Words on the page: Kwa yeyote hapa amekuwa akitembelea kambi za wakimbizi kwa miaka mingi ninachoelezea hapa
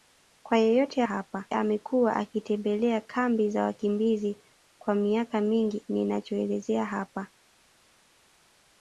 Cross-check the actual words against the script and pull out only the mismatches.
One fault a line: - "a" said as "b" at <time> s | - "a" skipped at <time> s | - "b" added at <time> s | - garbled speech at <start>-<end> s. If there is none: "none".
none